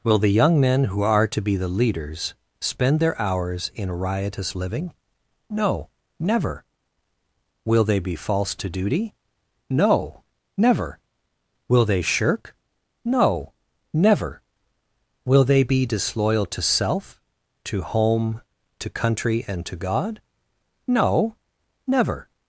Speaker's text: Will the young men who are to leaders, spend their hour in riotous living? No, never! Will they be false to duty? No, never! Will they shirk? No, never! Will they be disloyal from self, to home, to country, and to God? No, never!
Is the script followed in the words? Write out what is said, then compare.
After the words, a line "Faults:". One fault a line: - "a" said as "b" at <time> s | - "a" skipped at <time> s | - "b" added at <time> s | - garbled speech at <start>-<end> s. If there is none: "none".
Will the young men who are to be the leaders, spend their hours in riotous living? No, never! Will they be false to duty? No, never! Will they shirk? No, never! Will they be disloyal to self, to home, to country, and to God? No, never!
Faults:
- "be the" added at 1.4 s
- "hour" said as "hours" at 3.2 s
- "from" said as "to" at 16.5 s